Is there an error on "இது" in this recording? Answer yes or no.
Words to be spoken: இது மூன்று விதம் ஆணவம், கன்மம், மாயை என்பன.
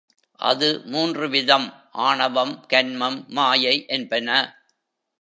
yes